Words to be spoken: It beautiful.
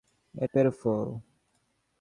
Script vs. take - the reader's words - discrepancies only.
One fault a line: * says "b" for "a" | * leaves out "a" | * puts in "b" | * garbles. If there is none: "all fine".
all fine